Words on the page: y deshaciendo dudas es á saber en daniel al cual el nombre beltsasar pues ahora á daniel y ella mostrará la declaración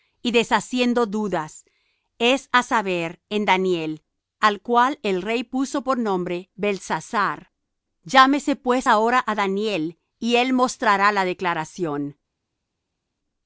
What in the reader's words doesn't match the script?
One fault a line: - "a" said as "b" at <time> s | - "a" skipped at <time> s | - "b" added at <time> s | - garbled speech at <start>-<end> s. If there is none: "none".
- "rey puso por" added at 5.2 s
- "llámese" added at 8.0 s
- "ella" said as "él" at 10.4 s